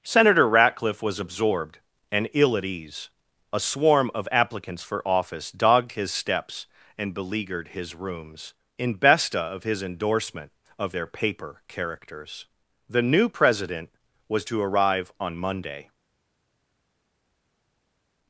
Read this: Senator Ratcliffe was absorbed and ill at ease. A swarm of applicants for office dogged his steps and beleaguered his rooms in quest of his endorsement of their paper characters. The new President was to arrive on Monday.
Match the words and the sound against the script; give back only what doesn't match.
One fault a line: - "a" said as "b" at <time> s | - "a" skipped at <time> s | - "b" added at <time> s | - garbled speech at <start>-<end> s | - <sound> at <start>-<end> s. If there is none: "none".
- "quest" said as "besta" at 9.0 s